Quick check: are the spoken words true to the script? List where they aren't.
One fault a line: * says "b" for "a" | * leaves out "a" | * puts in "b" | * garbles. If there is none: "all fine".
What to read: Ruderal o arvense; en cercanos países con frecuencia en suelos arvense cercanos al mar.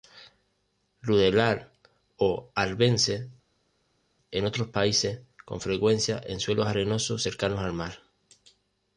* says "otros" for "cercanos"
* says "arenosos" for "arvense"